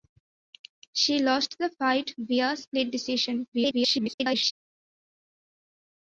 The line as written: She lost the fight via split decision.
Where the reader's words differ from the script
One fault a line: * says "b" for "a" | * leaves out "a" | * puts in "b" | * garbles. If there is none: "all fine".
* garbles